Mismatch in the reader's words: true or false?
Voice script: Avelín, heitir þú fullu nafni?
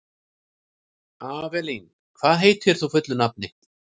true